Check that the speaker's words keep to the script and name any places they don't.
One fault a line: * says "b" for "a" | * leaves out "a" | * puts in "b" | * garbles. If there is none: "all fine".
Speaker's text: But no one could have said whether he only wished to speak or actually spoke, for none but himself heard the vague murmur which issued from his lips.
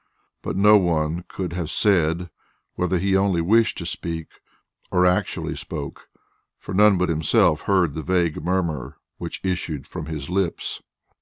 all fine